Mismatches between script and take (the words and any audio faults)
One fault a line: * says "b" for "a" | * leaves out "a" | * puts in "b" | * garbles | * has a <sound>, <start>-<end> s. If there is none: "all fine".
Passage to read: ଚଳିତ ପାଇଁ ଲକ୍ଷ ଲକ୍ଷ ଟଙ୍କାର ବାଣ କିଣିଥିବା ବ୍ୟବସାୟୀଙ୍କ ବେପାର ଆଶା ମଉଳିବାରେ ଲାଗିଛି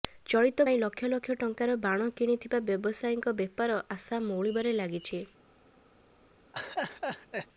* has a laugh, 6.5-7.5 s